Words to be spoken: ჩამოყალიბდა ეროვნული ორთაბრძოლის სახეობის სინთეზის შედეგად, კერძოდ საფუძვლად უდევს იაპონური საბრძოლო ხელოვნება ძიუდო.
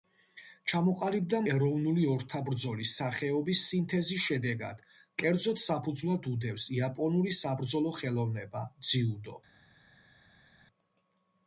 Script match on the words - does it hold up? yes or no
yes